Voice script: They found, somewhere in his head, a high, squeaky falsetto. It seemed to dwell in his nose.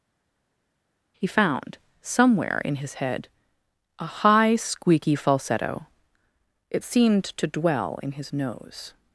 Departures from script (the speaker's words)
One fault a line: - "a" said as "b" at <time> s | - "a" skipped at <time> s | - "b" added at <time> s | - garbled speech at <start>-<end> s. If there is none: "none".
- "They" said as "He" at 1.2 s